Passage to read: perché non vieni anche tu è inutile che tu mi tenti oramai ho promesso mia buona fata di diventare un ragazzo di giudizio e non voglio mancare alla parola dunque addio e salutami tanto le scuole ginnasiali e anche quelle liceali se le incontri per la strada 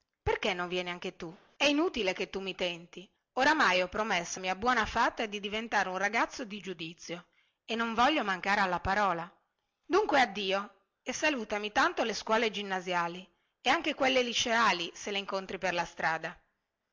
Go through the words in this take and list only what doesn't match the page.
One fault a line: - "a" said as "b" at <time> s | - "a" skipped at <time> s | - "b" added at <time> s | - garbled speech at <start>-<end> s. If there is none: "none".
none